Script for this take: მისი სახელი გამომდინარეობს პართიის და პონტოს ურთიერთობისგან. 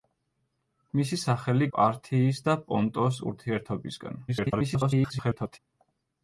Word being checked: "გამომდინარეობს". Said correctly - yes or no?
no